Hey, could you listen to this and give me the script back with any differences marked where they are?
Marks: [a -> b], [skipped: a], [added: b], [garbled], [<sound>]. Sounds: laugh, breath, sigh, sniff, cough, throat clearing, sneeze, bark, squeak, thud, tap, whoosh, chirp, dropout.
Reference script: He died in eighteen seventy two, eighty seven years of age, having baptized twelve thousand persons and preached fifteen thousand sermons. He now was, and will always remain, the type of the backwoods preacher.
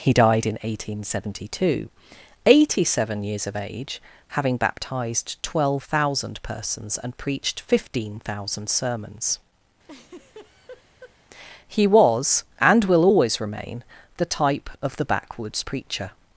He died in eighteen seventy two, eighty seven years of age, having baptized twelve thousand persons and preached fifteen thousand sermons. [laugh] He [skipped: now] was, and will always remain, the type of the backwoods preacher.